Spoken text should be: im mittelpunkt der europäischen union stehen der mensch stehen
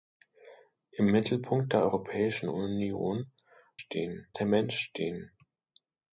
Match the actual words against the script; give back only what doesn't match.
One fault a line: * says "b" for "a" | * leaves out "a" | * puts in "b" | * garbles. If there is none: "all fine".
all fine